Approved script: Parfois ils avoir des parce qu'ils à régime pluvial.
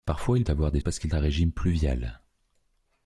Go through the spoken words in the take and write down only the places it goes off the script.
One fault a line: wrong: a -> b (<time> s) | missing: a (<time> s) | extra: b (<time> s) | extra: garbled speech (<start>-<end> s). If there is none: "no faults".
no faults